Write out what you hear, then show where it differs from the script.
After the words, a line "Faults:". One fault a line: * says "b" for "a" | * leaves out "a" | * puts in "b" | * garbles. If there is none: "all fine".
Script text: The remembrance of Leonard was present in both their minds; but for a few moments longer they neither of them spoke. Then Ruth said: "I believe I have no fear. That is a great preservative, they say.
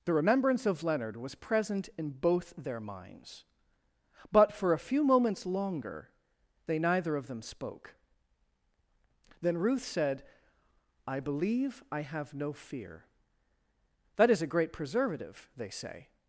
The remembrance of Leonard was present in both their minds; but for a few moments longer they neither of them spoke. Then Ruth said: "I believe I have no fear. That is a great preservative, they say.
Faults:
all fine